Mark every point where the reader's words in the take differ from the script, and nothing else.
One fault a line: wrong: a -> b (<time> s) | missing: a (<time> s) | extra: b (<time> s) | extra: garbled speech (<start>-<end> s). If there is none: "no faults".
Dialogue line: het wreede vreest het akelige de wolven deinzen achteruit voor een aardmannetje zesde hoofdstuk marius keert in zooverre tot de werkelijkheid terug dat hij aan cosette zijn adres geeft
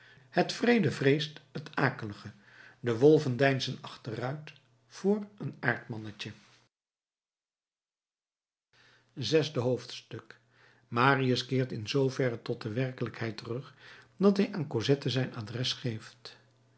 no faults